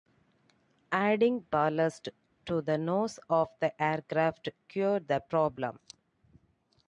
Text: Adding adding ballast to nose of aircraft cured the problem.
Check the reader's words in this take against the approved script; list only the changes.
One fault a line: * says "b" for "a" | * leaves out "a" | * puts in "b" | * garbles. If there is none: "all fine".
* leaves out "adding"
* puts in "the"
* puts in "the"